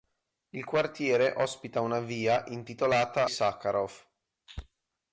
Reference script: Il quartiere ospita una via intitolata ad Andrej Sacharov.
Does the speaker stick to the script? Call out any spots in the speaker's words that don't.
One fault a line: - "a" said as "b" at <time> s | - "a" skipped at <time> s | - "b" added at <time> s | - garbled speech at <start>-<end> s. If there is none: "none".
- "ad Andrej" skipped at 3.3 s